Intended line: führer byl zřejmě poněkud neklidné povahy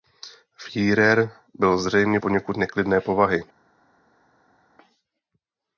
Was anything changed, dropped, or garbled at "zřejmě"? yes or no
no